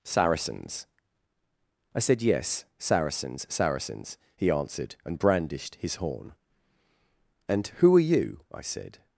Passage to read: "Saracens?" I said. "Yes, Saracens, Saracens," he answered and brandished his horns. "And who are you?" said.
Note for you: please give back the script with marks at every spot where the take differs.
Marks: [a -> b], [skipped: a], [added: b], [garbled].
"Saracens?" I said. "Yes, Saracens, Saracens," he answered and brandished his [horns. -> horn] "And who are you?" [added: I] said.